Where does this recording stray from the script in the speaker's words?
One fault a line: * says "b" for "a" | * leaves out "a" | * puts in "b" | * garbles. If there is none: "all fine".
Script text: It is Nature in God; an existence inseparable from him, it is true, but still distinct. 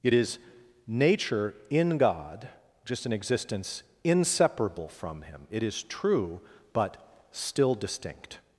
* puts in "just"